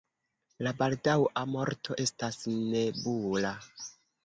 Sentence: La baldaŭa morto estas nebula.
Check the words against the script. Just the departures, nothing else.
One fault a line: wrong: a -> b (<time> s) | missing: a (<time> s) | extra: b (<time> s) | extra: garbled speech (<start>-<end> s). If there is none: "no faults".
no faults